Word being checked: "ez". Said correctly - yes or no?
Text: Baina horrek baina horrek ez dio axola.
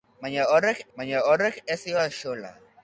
yes